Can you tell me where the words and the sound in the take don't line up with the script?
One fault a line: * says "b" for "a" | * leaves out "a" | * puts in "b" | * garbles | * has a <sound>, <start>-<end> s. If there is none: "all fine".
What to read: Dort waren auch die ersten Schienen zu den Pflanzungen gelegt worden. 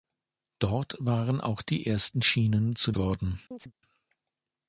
* leaves out "den Pflanzungen gelegt"
* has a chirp, 3.5-3.7 s